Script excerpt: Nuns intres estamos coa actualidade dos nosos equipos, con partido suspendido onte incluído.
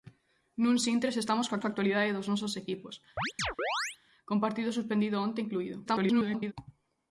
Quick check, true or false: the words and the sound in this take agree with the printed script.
false